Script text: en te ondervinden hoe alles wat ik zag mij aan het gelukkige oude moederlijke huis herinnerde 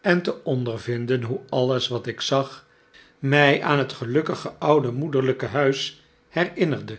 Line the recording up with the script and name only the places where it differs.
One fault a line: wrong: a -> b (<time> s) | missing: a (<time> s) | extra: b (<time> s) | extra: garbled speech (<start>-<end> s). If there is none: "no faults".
no faults